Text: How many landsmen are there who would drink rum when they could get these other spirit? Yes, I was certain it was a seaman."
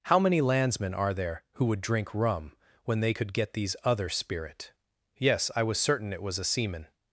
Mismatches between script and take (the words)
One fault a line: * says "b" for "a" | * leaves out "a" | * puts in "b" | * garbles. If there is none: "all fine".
all fine